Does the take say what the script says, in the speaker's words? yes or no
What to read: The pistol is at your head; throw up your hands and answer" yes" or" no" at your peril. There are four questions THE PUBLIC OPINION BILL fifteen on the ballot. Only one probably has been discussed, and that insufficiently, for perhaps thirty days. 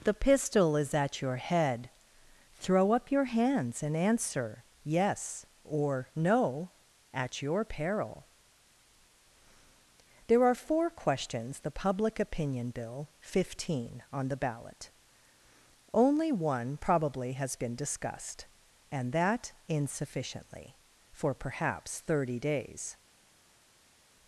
yes